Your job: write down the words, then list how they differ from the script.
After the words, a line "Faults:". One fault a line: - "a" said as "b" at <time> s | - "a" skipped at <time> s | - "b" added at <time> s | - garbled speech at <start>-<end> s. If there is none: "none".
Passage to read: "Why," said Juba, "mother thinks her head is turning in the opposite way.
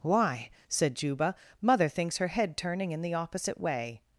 "Why," said Juba, "mother thinks her head turning in the opposite way.
Faults:
- "is" skipped at 2.6 s